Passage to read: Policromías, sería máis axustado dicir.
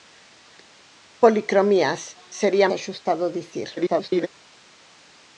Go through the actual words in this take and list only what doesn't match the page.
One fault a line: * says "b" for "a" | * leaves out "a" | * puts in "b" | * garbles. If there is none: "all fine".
* leaves out "máis"
* garbles